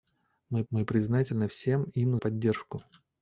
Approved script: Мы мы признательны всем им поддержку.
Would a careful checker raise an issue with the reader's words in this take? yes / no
no